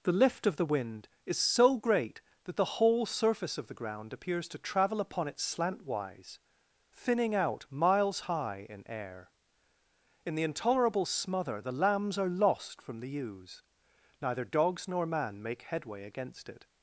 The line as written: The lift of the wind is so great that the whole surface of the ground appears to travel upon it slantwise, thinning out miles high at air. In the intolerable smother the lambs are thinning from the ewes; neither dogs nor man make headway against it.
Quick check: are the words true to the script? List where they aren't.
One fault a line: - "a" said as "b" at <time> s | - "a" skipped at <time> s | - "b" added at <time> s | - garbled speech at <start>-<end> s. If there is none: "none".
- "at" said as "in" at 8.7 s
- "thinning" said as "lost" at 12.3 s